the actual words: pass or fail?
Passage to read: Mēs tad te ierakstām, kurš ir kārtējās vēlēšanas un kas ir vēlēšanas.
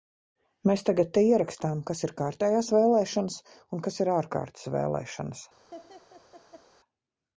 fail